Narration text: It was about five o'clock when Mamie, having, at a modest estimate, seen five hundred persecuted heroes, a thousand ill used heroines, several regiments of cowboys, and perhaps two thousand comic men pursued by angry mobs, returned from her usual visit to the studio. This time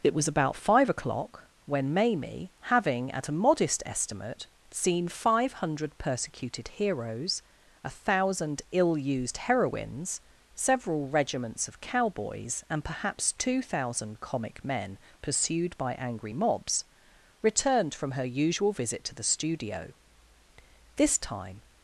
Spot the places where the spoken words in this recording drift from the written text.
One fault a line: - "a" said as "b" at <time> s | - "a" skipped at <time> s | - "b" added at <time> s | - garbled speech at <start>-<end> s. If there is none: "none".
none